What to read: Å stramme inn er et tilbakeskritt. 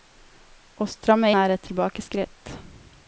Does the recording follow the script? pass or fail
fail